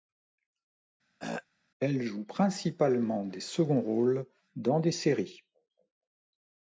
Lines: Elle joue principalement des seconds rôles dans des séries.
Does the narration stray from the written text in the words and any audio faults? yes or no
yes